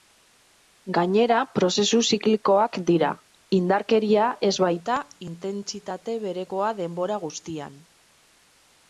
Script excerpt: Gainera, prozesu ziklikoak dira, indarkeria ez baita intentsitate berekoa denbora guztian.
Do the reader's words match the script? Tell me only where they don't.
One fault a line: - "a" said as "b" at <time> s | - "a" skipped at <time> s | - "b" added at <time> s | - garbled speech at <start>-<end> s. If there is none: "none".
none